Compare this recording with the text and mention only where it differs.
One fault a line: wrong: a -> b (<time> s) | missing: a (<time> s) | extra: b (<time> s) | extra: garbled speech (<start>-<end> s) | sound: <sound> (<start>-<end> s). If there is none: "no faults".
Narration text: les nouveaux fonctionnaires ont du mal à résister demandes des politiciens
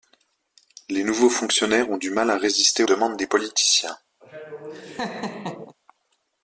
sound: laugh (4.2-5.7 s)